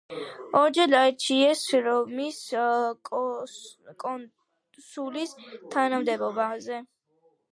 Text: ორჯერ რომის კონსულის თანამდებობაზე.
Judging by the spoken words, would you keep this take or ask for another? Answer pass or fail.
fail